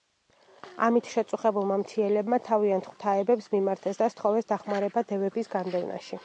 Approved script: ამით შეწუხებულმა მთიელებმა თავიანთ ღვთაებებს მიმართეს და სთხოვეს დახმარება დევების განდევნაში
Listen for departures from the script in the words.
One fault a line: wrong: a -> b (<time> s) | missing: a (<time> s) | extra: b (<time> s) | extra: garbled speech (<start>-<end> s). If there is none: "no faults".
no faults